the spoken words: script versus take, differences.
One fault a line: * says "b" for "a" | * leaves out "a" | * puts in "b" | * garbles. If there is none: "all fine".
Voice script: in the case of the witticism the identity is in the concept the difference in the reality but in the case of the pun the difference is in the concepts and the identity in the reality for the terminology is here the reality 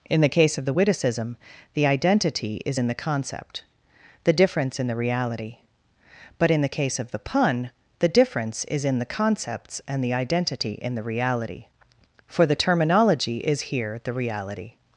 all fine